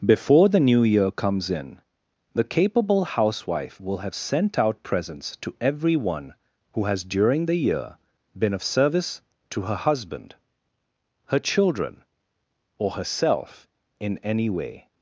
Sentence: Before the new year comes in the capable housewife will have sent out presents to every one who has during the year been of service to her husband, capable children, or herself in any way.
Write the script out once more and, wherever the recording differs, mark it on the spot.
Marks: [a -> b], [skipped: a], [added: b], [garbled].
Before the new year comes in the capable housewife will have sent out presents to every one who has during the year been of service to her husband, [capable -> her] children, or herself in any way.